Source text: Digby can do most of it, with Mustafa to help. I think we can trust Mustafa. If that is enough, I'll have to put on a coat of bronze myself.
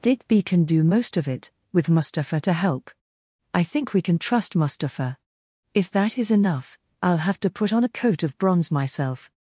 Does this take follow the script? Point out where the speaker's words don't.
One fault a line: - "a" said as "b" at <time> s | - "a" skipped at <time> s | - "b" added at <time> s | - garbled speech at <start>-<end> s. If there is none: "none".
none